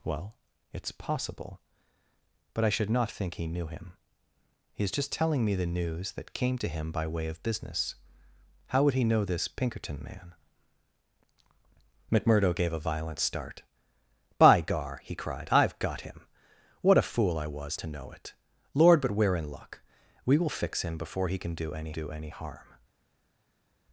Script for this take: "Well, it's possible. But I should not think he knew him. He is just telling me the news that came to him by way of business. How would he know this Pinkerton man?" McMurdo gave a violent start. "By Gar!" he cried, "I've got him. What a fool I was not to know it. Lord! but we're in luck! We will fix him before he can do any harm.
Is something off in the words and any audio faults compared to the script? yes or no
yes